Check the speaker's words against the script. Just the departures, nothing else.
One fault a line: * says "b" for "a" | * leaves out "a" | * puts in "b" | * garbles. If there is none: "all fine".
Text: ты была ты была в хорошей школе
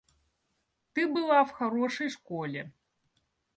* leaves out "ты была"